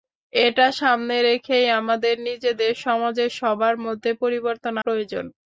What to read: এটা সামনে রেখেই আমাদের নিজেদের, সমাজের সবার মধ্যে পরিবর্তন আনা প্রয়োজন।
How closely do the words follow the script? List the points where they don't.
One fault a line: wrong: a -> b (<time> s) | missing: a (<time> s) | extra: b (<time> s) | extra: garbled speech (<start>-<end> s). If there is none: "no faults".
missing: আনা (4.7 s)